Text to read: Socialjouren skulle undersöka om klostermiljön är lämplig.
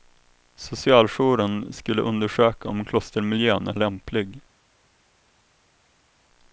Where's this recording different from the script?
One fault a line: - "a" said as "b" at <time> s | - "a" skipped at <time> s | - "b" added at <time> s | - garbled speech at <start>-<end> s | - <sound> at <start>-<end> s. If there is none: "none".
none